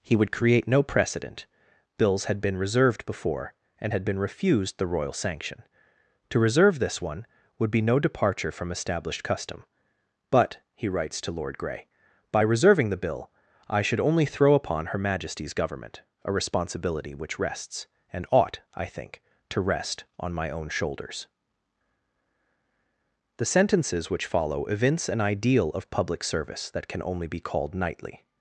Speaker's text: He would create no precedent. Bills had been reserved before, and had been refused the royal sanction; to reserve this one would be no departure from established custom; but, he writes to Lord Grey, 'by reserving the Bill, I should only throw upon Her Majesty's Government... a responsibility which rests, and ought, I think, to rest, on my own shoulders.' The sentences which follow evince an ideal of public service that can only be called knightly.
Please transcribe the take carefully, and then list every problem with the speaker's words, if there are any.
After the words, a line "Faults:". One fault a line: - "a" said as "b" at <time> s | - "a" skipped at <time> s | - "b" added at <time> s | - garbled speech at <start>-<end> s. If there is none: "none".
He would create no precedent. Bills had been reserved before, and had been refused the royal sanction; to reserve this one would be no departure from established custom; but, he writes to Lord Grey, 'by reserving the Bill, I should only throw upon Her Majesty's Government... a responsibility which rests, and ought, I think, to rest, on my own shoulders.' The sentences which follow evince an ideal of public service that can only be called knightly.
Faults:
none